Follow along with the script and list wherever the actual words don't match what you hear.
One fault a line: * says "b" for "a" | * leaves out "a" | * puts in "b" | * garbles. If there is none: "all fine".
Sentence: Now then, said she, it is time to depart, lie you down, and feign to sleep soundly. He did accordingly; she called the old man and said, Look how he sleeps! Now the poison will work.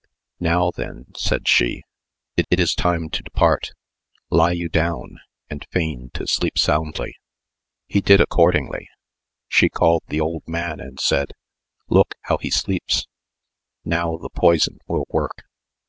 * puts in "it"